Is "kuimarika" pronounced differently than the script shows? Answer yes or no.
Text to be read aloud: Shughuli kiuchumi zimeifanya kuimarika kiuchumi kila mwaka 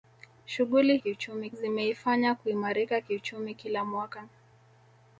no